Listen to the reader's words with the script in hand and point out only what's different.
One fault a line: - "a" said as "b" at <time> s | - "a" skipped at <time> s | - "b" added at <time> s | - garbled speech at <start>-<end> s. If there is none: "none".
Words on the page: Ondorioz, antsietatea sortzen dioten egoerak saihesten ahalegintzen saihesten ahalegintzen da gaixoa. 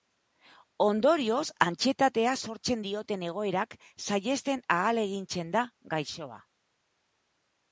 - "saihesten ahalegintzen" skipped at 5.5 s